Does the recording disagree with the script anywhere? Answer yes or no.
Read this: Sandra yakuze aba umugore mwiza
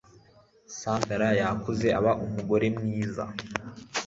no